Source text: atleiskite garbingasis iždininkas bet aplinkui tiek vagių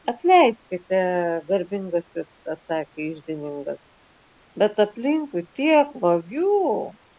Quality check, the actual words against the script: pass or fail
fail